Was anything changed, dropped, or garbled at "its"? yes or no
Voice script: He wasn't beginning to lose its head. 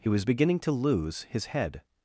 yes